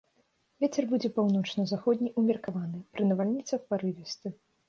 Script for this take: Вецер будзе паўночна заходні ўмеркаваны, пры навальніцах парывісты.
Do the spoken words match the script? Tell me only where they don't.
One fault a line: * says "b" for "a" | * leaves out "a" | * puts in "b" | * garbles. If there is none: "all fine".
all fine